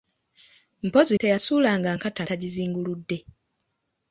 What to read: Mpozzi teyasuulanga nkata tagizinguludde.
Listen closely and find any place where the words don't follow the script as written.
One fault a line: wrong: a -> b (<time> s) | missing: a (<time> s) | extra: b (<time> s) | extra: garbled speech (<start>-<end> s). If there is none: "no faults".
no faults